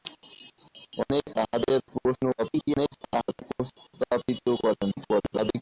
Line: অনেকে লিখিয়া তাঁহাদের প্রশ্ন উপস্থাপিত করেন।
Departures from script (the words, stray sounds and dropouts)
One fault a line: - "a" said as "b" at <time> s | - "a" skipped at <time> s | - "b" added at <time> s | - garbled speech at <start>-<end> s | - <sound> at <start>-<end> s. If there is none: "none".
- "লিখিয়া" skipped at 1.3 s
- garbled speech at 2.4-3.4 s
- garbled speech at 4.9-5.6 s